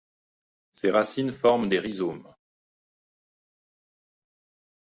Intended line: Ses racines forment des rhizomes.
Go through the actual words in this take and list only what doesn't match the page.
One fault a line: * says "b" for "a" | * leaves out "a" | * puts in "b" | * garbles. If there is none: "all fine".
all fine